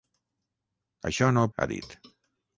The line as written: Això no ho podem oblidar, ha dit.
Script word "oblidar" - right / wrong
wrong